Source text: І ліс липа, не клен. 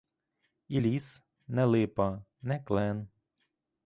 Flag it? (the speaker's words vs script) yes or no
yes